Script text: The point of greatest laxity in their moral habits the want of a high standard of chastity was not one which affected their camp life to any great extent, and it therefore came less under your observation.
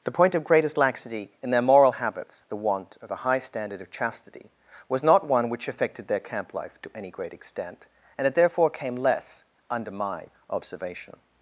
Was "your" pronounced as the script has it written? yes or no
no